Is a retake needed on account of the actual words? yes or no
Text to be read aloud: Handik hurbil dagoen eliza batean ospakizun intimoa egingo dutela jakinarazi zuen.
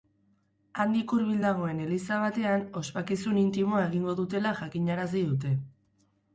yes